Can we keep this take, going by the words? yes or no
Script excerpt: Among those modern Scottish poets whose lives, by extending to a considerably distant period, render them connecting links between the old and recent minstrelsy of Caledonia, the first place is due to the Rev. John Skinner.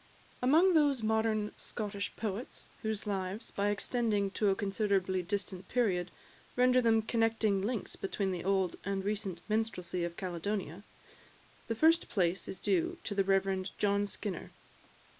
yes